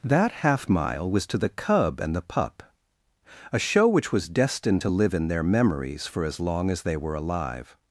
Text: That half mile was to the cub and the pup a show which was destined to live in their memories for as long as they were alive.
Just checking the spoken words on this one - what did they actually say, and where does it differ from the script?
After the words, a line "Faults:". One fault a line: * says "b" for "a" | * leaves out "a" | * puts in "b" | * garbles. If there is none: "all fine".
That half mile was to the cub and the pup a show which was destined to live in their memories for as long as they were alive.
Faults:
all fine